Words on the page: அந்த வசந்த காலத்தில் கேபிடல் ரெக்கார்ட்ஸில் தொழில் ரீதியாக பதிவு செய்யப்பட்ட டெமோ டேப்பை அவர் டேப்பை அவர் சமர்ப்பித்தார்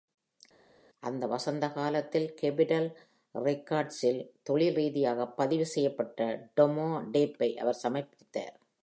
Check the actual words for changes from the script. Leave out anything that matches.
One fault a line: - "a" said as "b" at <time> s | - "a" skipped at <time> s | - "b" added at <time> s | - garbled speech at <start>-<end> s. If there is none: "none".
- "டேப்பை அவர்" skipped at 7.8 s